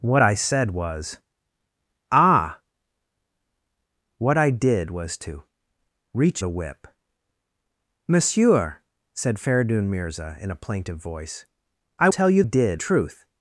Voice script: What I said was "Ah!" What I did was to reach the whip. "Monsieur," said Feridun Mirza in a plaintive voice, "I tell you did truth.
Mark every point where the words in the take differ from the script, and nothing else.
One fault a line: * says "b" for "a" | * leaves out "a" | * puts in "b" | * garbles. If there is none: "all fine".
all fine